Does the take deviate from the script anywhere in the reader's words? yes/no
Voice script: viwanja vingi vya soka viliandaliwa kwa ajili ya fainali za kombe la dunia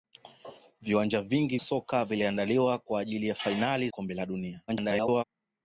yes